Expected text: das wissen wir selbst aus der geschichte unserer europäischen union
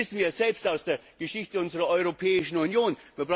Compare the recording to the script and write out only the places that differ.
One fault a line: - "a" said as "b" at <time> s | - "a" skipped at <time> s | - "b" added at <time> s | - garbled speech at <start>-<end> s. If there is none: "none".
none